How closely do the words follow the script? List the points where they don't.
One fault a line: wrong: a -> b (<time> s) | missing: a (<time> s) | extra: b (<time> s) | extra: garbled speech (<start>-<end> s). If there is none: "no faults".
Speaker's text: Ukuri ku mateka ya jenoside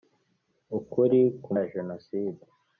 missing: mateka (1.5 s)